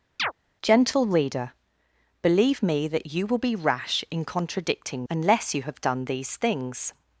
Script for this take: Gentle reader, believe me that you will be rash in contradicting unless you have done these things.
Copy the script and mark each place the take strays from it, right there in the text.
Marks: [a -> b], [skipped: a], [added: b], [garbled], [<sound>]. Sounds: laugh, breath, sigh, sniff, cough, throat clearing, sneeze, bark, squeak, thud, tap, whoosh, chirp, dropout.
[chirp] Gentle reader, believe me that you will be rash in contradicting unless you have done these things.